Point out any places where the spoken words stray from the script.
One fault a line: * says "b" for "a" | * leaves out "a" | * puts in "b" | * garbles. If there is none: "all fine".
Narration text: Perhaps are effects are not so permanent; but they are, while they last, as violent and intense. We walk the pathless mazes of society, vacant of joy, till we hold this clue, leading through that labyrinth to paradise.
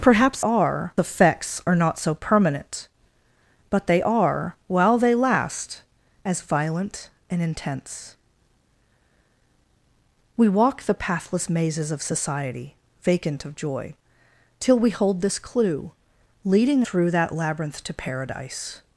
all fine